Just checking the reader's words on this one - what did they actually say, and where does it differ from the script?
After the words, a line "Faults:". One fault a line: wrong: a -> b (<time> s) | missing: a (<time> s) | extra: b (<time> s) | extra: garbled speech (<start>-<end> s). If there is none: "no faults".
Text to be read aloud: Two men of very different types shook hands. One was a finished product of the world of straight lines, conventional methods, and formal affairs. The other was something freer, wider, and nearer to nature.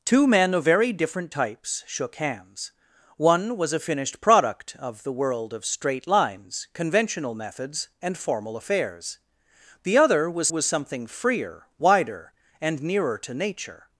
Two men of very different types shook hands. One was a finished product of the world of straight lines, conventional methods, and formal affairs. The other was was something freer, wider, and nearer to nature.
Faults:
extra: was (10.5 s)